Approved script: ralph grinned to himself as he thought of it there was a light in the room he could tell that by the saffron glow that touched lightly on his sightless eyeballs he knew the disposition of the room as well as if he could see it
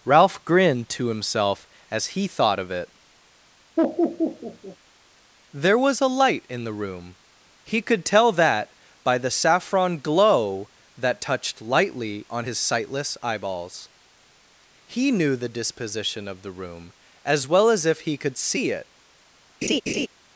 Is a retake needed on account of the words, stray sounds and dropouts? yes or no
yes